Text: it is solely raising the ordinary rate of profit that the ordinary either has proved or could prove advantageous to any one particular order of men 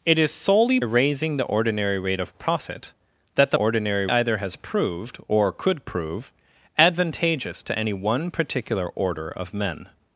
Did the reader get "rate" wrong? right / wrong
right